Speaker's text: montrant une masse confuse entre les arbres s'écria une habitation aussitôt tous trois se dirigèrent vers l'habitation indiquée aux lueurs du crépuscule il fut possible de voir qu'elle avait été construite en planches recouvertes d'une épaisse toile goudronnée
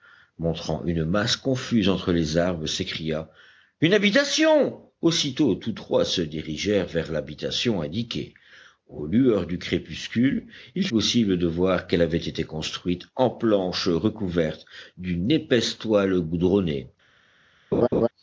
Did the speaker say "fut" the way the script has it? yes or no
no